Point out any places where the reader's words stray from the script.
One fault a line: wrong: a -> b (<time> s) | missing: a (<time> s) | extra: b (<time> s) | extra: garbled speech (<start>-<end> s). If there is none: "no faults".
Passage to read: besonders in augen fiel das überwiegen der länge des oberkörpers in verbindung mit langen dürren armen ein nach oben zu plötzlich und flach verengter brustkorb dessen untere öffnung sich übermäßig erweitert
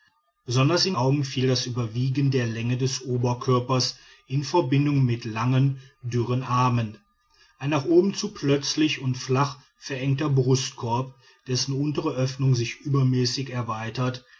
no faults